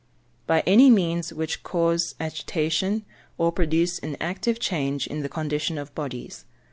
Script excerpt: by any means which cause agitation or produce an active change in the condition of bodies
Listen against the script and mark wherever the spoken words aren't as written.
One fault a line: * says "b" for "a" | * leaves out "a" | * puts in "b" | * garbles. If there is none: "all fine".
all fine